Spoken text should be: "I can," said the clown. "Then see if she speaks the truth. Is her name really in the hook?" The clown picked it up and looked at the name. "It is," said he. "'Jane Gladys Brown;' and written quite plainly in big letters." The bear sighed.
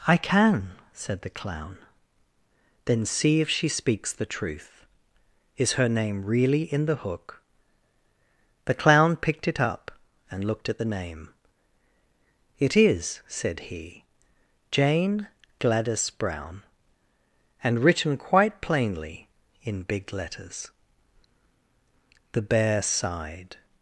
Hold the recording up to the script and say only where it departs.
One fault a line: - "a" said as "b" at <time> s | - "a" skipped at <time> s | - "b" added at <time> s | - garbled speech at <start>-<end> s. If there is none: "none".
none